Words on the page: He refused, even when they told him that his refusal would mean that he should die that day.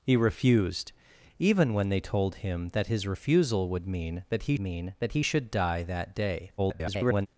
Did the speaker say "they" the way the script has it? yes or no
yes